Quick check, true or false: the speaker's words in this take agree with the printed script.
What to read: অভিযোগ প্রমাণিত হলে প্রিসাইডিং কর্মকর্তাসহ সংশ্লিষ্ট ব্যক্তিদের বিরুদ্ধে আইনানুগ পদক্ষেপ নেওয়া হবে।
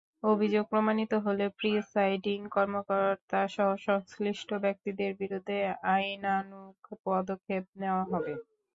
true